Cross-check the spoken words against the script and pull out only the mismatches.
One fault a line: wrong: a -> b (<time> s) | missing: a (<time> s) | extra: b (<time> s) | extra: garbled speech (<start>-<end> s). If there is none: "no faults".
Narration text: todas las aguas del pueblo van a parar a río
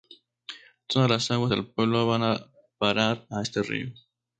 extra: este (3.4 s)